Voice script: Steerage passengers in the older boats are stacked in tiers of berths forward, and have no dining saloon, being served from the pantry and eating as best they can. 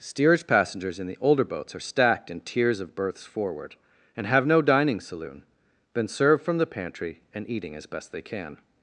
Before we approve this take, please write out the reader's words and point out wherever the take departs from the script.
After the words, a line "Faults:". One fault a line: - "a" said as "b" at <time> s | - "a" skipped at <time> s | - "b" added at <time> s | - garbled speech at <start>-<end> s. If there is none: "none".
Steerage passengers in the older boats are stacked in tiers of berths forward, and have no dining saloon, been served from the pantry and eating as best they can.
Faults:
- "being" said as "been" at 5.9 s